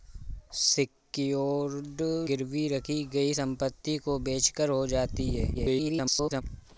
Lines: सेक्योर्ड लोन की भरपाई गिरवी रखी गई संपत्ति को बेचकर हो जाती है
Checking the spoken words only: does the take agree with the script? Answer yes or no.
no